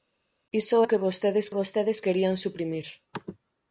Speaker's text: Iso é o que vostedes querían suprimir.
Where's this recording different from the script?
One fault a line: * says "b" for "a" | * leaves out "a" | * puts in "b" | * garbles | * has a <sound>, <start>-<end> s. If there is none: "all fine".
* leaves out "é"
* puts in "vostedes"